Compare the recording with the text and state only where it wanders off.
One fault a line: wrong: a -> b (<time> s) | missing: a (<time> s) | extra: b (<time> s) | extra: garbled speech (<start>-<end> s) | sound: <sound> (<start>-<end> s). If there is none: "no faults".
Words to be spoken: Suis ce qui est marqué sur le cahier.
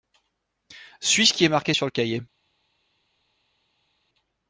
no faults